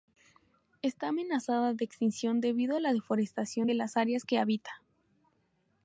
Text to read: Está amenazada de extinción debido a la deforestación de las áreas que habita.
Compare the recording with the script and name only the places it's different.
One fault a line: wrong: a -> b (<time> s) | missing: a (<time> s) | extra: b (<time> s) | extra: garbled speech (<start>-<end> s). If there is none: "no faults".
no faults